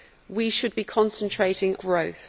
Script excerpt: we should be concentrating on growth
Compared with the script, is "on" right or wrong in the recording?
wrong